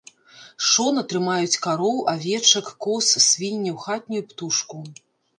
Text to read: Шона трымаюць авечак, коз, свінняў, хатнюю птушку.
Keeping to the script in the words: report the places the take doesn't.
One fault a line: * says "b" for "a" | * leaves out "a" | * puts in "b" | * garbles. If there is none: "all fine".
* puts in "кароў"